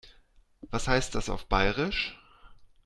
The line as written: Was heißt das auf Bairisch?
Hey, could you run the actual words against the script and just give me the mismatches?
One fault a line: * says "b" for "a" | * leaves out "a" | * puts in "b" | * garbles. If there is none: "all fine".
all fine